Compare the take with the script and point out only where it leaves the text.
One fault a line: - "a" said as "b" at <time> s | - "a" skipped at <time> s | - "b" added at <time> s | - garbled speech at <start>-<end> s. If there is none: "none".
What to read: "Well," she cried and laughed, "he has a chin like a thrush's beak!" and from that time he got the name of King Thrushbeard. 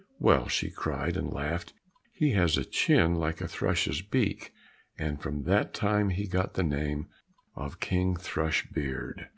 none